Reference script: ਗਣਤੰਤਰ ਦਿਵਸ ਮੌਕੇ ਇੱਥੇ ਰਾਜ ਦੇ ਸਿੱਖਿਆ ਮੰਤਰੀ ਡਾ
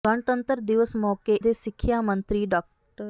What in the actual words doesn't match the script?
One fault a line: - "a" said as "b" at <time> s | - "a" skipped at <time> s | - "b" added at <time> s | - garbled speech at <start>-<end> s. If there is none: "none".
- "ਇੱਥੇ ਰਾਜ" skipped at 1.3 s